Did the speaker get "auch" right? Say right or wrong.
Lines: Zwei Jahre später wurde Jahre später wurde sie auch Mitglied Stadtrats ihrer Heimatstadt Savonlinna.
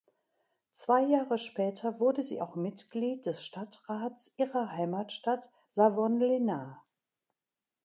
right